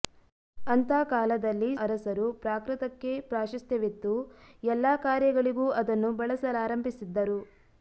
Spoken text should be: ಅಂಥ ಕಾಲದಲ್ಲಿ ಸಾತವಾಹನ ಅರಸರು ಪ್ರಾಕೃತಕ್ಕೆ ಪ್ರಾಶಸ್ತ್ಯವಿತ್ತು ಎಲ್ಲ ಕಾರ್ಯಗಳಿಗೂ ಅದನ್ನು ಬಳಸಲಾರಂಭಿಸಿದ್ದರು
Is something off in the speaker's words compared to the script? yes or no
yes